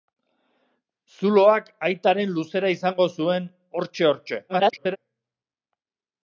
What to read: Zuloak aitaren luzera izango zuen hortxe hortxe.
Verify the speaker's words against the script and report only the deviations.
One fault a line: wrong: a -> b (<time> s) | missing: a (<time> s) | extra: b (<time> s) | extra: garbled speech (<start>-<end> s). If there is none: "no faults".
extra: garbled speech (4.5-5.0 s)